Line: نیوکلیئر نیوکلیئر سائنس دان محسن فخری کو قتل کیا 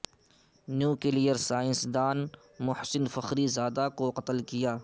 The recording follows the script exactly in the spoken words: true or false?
false